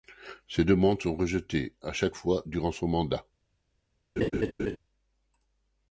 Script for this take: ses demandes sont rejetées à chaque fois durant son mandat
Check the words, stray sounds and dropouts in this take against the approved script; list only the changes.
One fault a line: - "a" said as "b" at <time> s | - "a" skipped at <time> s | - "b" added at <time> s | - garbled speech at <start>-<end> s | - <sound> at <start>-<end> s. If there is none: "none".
- laugh at 4.2-4.8 s